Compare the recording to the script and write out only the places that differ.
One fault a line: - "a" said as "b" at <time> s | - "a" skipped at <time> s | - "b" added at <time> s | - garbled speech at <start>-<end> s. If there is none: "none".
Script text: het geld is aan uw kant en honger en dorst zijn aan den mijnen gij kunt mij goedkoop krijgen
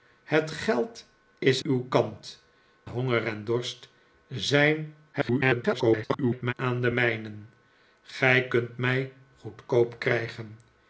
- "aan" skipped at 1.6 s
- "en" skipped at 2.4 s
- garbled speech at 5.1-6.5 s